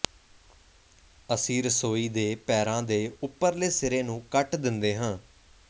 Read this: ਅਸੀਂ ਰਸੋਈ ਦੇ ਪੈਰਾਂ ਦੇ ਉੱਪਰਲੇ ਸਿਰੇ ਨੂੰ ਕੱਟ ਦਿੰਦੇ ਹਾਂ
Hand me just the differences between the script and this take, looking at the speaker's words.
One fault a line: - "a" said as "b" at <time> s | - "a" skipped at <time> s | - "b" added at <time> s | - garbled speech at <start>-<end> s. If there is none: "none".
none